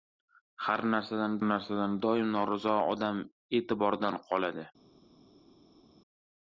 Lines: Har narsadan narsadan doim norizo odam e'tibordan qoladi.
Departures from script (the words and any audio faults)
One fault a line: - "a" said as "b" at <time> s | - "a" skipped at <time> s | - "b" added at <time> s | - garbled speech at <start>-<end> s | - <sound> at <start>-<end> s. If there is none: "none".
none